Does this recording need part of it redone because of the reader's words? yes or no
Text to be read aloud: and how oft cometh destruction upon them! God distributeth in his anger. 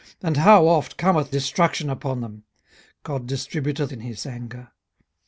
no